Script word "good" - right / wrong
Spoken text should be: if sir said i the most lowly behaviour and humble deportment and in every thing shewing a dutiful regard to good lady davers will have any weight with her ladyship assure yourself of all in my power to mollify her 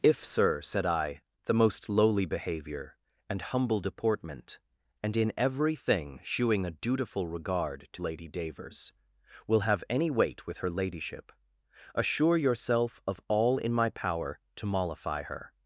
wrong